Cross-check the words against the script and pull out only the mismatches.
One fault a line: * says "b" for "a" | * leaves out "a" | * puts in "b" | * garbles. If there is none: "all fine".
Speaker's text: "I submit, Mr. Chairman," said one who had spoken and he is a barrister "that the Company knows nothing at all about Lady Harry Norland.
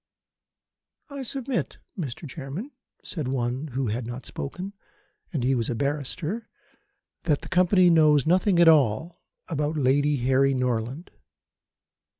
* puts in "not"
* says "was" for "is"